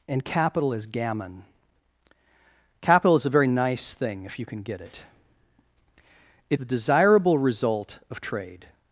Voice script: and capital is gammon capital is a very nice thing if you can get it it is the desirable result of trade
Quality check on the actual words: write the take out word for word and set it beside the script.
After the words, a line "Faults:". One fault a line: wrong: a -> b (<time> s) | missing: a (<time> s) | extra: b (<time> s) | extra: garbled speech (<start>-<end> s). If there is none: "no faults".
and capital is gammon capital is a very nice thing if you can get it it the desirable result of trade
Faults:
missing: is (6.6 s)